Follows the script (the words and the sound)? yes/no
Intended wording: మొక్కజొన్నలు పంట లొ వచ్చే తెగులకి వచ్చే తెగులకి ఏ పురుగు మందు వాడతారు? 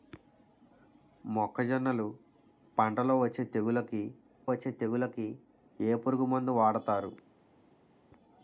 yes